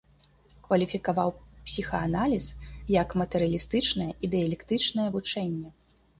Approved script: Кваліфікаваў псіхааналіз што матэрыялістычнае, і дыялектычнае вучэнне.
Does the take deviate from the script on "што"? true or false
true